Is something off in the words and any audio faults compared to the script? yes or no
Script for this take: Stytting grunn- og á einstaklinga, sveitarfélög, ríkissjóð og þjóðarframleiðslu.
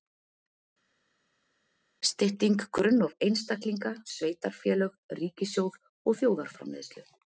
no